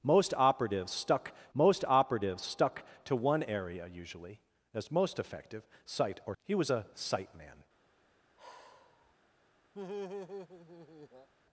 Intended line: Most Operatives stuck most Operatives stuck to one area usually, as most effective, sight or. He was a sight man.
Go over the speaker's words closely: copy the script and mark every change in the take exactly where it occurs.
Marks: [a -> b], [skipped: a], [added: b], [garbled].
Most Operatives stuck most Operatives stuck to one area usually, as most effective, sight or. He was a sight man.